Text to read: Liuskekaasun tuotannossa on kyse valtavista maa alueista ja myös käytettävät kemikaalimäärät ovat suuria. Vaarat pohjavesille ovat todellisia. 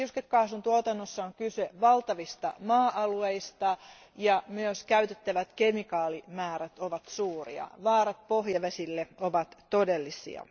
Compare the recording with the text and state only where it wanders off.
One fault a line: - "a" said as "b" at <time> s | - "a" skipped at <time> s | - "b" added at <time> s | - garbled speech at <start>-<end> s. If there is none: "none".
none